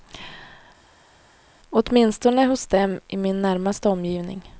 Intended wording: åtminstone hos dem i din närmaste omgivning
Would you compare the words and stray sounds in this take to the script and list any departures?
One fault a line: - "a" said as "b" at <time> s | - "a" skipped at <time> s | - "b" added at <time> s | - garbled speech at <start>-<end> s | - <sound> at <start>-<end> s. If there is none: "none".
- "din" said as "min" at 3.2 s